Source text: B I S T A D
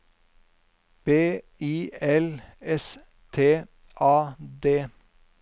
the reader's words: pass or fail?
fail